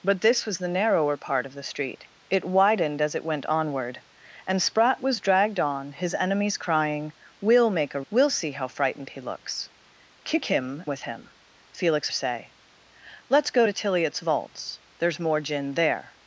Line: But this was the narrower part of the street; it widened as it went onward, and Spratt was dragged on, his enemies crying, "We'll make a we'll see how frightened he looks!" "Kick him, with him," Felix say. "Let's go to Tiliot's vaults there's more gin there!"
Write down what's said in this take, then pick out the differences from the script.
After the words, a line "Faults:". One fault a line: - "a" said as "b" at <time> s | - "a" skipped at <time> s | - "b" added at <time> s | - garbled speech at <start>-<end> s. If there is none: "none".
But this was the narrower part of the street; it widened as it went onward, and Spratt was dragged on, his enemies crying, "We'll make a we'll see how frightened he looks!" "Kick him, with him," Felix say. "Let's go to Tiliot's vaults there's more gin there!"
Faults:
none